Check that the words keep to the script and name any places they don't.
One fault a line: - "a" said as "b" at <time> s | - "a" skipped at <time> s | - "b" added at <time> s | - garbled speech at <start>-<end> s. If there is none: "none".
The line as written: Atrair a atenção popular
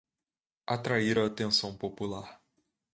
none